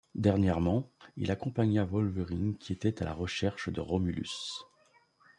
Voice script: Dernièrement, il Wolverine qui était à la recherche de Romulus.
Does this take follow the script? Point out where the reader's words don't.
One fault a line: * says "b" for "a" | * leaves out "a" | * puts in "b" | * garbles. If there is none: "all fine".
* puts in "accompagna"